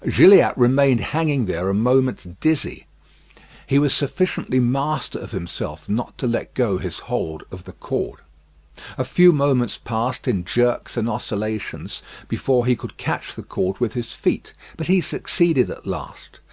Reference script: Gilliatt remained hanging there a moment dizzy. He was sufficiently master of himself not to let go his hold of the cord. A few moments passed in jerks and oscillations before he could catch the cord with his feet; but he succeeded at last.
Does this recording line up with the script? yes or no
yes